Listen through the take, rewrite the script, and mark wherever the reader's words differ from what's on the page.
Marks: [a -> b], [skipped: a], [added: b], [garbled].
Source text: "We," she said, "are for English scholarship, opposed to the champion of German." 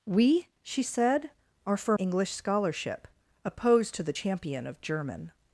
"We," she said, "are for English scholarship, opposed to the champion of German."